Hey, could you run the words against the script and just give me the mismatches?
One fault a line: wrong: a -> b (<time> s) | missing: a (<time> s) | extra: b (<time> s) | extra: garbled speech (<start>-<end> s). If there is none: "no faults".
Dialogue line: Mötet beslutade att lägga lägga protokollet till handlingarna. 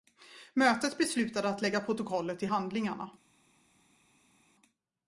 missing: lägga (1.8 s)